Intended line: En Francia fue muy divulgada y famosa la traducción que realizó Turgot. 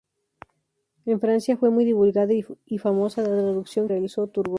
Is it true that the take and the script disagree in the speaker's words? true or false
true